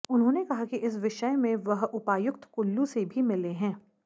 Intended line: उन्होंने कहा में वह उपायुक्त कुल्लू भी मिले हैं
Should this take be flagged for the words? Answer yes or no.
yes